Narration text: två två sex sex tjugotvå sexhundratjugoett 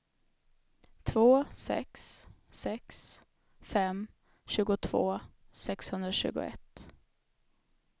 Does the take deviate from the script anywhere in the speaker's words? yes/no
yes